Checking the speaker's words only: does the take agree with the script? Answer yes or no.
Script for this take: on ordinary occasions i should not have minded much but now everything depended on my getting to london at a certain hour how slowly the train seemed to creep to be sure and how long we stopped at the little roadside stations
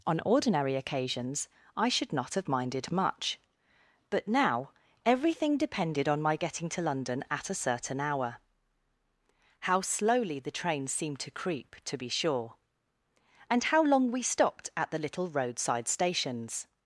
yes